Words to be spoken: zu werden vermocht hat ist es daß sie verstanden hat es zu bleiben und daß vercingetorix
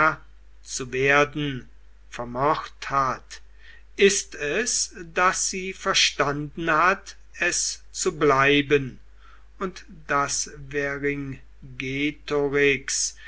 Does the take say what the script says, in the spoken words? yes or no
yes